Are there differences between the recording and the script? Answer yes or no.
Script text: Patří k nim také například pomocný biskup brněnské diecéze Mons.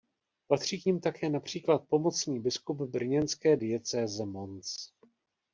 no